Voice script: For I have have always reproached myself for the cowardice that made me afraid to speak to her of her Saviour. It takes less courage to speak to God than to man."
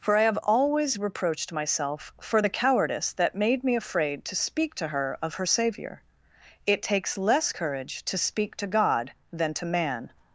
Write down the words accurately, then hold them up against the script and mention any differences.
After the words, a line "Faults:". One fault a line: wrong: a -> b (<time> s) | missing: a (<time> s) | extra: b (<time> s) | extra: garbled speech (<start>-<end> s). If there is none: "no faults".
For I have always reproached myself for the cowardice that made me afraid to speak to her of her Saviour. It takes less courage to speak to God than to man."
Faults:
missing: have (0.4 s)